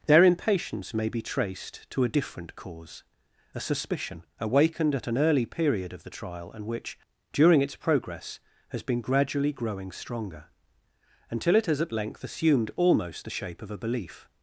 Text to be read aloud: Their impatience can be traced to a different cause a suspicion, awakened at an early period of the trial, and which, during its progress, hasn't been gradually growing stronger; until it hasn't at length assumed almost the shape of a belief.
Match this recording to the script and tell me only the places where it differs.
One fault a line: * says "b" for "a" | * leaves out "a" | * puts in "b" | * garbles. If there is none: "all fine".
* says "may" for "can"
* says "has" for "hasn't"
* says "has" for "hasn't"